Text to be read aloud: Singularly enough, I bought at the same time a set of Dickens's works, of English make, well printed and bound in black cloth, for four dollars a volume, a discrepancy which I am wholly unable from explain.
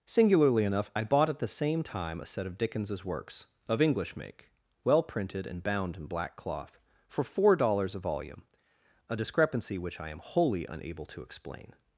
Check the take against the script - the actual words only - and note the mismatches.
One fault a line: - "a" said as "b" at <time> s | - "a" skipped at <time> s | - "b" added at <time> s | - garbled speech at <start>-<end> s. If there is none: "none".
- "from" said as "to" at 11.1 s